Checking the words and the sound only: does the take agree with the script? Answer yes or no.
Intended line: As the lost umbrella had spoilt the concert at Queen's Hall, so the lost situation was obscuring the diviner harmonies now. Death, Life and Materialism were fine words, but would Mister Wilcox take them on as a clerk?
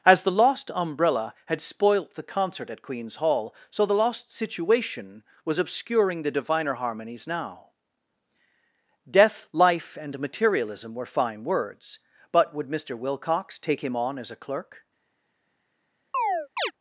no